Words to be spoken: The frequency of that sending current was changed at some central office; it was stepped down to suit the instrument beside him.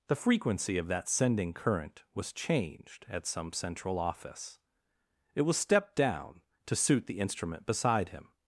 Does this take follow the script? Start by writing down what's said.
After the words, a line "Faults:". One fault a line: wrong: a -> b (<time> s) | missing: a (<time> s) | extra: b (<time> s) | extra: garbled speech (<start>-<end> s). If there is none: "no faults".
The frequency of that sending current was changed at some central office; it was stepped down to suit the instrument beside him.
Faults:
no faults